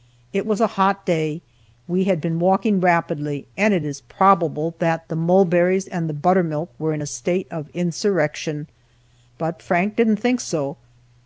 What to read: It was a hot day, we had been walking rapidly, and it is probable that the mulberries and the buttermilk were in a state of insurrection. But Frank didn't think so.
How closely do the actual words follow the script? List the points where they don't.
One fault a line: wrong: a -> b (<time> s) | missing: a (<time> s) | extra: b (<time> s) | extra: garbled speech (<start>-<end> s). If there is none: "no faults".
no faults